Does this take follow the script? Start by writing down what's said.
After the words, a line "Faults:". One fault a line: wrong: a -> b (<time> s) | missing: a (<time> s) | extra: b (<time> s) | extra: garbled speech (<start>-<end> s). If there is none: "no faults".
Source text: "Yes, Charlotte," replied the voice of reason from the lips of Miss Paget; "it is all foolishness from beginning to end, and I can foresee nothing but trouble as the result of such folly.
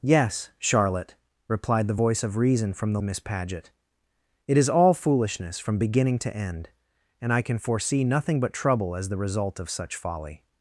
"Yes, Charlotte," replied the voice of reason from the Miss Paget; "it is all foolishness from beginning to end, and I can foresee nothing but trouble as the result of such folly.
Faults:
missing: lips of (3.0 s)